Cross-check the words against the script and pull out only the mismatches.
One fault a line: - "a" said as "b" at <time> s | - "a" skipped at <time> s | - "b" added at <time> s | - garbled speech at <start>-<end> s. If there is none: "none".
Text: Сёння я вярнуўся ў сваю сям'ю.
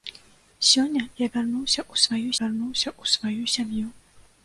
- "вярнуўся ў сваю" added at 2.4 s